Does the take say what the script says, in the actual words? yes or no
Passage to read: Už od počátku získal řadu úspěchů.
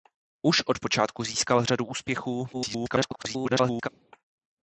no